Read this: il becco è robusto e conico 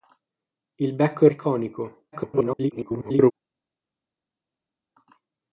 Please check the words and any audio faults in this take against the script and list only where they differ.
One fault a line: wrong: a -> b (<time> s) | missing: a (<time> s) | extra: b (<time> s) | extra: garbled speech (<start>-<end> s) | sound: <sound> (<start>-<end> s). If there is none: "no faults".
missing: robusto (1.3 s)
extra: garbled speech (2.1-3.3 s)